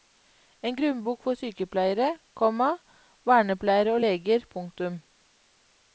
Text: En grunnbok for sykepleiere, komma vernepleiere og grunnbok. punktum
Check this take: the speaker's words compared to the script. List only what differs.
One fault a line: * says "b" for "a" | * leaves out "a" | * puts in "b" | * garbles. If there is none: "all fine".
* says "leger" for "grunnbok"